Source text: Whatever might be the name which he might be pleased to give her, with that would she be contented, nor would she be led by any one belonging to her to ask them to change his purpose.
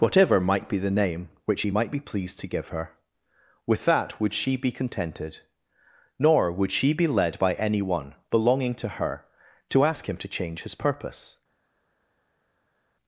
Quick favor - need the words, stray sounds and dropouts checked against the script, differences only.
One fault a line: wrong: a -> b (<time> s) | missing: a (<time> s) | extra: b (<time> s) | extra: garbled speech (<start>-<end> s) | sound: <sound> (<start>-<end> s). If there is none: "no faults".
wrong: them -> him (10.1 s)